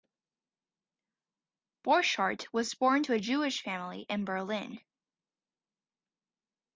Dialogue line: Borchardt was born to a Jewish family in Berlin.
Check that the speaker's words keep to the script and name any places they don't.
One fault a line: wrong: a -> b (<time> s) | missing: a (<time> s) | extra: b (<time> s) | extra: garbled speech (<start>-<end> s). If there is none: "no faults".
no faults